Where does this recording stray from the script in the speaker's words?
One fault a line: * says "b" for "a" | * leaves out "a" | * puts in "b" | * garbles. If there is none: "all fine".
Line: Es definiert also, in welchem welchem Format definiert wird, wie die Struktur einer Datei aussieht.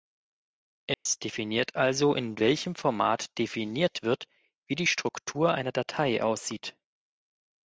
* leaves out "welchem"